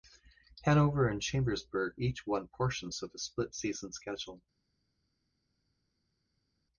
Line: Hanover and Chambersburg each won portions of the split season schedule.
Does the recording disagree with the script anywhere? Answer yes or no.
no